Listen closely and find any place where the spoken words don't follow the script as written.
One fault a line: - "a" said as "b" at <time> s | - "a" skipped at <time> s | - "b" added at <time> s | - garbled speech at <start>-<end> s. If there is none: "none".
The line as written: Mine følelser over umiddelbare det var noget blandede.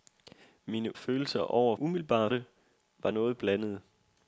none